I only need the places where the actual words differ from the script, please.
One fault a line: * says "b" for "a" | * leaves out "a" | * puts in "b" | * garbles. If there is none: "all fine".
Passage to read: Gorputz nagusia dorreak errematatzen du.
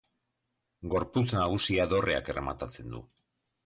all fine